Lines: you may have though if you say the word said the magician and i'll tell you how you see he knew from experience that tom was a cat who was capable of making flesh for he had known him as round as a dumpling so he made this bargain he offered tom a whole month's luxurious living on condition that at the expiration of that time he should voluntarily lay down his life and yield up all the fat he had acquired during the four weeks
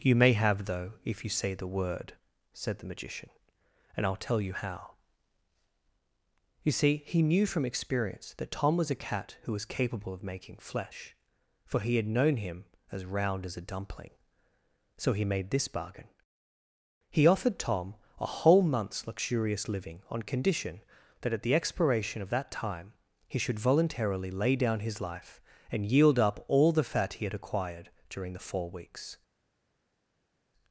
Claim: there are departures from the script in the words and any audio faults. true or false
false